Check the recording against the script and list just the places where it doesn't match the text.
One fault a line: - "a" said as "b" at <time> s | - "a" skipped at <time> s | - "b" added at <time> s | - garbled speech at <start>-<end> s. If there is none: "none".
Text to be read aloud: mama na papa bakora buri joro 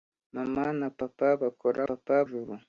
- "buri" said as "papa" at 1.9 s